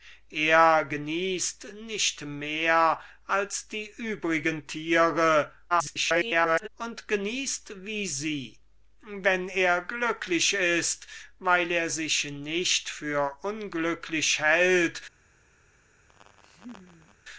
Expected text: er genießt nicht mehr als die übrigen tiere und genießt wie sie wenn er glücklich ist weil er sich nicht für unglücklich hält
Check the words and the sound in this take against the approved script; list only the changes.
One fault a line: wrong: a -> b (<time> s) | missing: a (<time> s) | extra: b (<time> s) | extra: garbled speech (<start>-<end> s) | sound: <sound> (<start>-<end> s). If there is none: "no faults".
extra: garbled speech (5.7-6.7 s)
sound: laugh (16.1-17.2 s)